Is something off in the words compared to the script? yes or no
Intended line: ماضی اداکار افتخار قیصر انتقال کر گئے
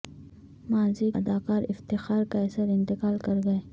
no